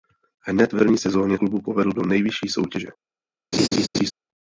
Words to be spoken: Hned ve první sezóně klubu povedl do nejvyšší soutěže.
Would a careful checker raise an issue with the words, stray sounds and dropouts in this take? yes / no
yes